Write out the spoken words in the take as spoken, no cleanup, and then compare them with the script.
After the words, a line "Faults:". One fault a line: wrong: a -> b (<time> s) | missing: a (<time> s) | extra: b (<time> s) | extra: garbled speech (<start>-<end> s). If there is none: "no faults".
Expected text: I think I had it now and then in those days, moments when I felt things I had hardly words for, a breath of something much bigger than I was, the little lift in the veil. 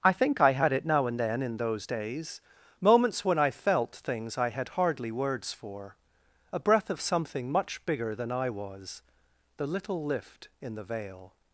I think I had it now and then in those days, moments when I felt things I had hardly words for, a breath of something much bigger than I was, the little lift in the veil.
Faults:
no faults